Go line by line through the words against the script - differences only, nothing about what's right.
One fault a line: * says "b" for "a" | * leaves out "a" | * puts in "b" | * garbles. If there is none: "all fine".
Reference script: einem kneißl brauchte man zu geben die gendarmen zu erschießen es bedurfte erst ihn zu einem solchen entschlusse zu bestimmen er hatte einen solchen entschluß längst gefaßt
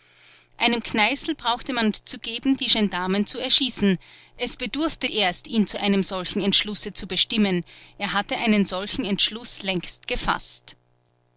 all fine